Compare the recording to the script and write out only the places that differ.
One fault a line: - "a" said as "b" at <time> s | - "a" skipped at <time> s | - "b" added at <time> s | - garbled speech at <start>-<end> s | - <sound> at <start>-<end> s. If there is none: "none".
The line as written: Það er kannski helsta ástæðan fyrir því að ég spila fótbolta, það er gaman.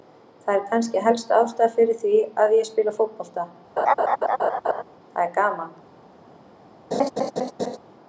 - laugh at 3.8-4.8 s
- laugh at 6.9-7.8 s